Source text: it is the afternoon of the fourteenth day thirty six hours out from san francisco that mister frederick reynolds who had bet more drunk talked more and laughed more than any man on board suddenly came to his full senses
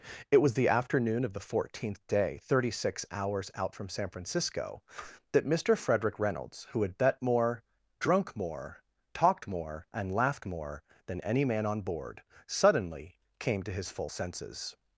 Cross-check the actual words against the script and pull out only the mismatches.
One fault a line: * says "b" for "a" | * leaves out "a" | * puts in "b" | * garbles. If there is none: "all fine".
* says "was" for "is"
* puts in "more"